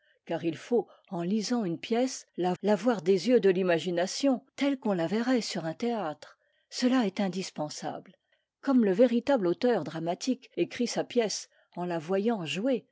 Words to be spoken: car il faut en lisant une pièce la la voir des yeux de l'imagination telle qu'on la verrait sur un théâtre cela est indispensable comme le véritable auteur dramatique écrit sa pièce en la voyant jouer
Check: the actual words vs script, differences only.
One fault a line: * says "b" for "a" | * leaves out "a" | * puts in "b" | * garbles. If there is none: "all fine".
all fine